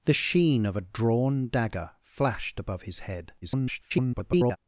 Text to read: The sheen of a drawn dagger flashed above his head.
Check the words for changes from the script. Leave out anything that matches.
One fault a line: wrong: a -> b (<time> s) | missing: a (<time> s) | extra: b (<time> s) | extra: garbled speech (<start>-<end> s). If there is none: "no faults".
extra: garbled speech (3.4-4.6 s)